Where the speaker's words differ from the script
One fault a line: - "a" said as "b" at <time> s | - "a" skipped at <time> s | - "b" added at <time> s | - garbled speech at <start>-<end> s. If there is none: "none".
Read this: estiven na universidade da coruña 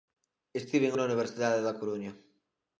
none